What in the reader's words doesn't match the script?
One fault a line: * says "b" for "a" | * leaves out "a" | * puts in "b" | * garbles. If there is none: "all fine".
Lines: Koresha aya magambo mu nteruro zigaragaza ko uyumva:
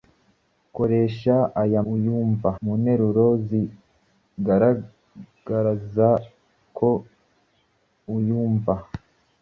* says "uyumva" for "magambo"